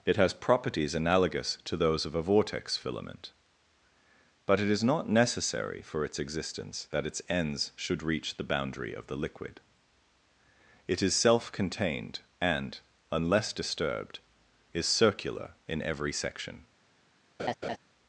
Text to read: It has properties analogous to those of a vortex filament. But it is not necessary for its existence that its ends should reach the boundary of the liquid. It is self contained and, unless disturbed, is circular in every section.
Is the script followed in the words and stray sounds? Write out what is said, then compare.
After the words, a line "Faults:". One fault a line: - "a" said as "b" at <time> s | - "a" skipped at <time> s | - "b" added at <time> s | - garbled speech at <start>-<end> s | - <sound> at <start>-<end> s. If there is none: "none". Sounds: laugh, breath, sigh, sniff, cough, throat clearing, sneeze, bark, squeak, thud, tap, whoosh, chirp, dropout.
It has properties analogous to those of a vortex filament. But it is not necessary for its existence that its ends should reach the boundary of the liquid. It is self contained and, unless disturbed, is circular in every section.
Faults:
- laugh at 17.4-17.8 s